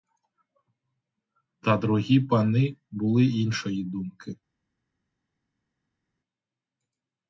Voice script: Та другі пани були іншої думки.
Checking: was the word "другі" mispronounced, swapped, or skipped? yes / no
no